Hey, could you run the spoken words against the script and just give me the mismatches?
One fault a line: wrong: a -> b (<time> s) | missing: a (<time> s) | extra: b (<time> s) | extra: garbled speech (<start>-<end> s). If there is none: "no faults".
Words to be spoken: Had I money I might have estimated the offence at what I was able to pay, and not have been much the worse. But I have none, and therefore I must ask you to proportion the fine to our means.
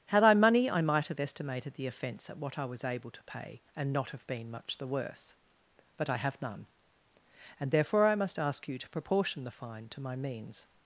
wrong: our -> my (10.0 s)